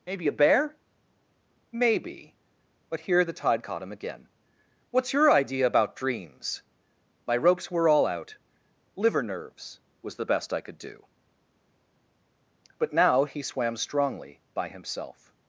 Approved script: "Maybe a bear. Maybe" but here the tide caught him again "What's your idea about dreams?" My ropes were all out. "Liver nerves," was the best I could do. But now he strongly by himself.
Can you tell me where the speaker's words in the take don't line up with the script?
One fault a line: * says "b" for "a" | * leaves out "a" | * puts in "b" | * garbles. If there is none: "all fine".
* puts in "swam"